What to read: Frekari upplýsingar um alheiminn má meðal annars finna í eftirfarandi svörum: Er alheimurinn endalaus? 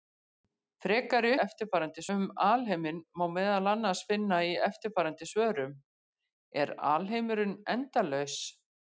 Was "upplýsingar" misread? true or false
true